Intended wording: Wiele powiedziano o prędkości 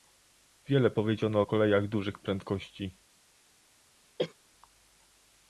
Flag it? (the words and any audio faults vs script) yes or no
yes